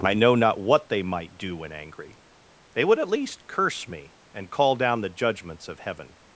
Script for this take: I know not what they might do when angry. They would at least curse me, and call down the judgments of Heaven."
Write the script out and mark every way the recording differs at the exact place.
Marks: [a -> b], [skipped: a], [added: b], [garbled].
I know not what they might do when angry. They would at least curse me, and call down the judgments of Heaven."